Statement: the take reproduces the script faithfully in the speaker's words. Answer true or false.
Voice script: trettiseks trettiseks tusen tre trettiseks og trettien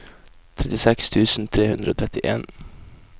false